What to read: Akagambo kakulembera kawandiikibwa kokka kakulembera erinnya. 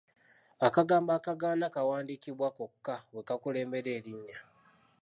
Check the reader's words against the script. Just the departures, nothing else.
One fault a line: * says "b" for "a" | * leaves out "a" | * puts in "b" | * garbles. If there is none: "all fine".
* says "akagaana" for "kakulembera"
* puts in "bwe"